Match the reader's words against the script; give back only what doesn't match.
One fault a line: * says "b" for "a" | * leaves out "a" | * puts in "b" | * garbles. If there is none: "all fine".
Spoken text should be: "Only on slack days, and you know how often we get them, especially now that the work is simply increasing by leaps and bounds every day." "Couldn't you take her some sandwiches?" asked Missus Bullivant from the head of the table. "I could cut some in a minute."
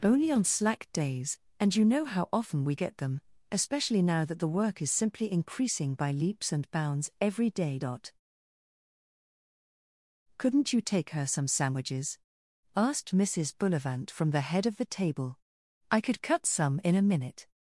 all fine